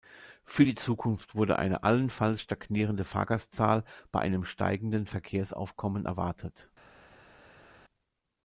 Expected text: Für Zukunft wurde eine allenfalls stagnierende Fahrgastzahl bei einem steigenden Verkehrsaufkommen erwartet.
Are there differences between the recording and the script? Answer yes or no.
yes